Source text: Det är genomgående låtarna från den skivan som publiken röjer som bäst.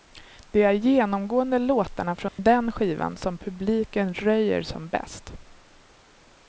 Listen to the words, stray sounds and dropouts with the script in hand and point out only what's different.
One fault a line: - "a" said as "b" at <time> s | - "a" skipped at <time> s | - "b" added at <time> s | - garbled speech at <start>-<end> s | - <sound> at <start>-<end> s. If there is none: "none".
- dropout at 2.3-2.4 s